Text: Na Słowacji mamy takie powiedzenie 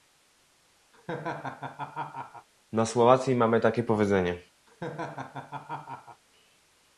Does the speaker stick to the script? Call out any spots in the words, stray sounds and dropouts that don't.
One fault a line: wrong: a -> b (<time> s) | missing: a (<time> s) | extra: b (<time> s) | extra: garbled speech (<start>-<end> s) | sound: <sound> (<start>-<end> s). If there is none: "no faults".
sound: laugh (0.9-2.5 s)
sound: laugh (4.7-6.2 s)